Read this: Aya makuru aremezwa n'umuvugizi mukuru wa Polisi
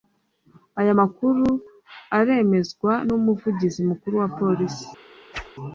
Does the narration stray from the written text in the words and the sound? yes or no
yes